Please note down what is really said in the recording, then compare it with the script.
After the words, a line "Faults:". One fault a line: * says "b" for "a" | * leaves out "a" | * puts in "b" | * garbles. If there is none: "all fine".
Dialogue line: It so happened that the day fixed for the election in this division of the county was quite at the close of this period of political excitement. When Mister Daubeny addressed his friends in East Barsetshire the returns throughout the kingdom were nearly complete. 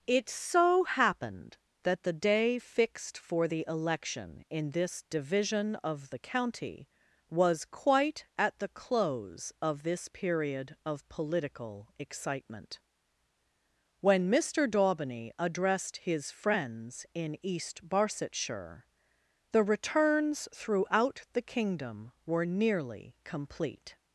It so happened that the day fixed for the election in this division of the county was quite at the close of this period of political excitement. When Mister Daubeny addressed his friends in East Barsetshire the returns throughout the kingdom were nearly complete.
Faults:
all fine